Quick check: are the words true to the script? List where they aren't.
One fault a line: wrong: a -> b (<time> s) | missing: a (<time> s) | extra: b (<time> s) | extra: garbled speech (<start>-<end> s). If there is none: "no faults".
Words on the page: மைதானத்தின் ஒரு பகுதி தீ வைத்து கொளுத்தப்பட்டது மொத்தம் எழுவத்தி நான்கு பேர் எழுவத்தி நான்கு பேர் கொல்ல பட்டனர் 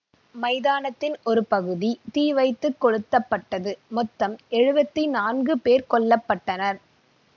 missing: எழுவத்தி நான்கு பேர் (5.9 s)